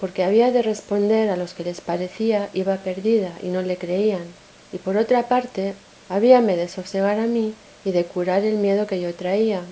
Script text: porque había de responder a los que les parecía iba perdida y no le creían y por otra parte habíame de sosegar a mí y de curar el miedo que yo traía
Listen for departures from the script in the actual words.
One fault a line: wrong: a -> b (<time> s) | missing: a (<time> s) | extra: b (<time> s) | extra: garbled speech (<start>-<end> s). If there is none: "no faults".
no faults